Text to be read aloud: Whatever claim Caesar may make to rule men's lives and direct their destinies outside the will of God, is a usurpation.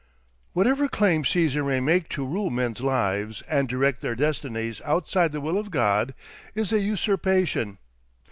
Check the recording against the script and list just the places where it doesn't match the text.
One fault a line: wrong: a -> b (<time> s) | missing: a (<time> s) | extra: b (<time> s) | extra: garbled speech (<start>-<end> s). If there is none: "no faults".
no faults